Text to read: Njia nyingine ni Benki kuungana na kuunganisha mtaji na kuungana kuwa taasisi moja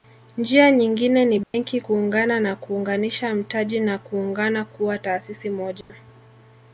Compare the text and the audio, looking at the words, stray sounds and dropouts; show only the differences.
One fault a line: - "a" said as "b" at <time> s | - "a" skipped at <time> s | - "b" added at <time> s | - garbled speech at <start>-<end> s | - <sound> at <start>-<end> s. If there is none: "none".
- dropout at 1.4-1.5 s
- dropout at 5.8-5.9 s